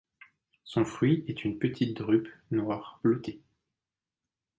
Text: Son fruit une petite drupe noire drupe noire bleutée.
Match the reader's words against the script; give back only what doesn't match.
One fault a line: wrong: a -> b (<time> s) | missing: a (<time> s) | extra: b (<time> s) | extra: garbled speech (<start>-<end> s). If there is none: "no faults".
extra: est (1.3 s)
missing: drupe noire (3.0 s)